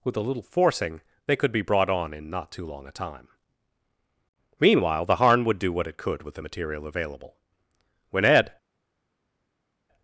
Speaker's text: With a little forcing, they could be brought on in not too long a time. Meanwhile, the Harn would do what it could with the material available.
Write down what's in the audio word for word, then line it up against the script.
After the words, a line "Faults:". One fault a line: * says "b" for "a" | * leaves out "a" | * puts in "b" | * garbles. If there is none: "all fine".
With a little forcing, they could be brought on in not too long a time. Meanwhile, the Harn would do what it could with the material available. When Ed
Faults:
* puts in "When Ed"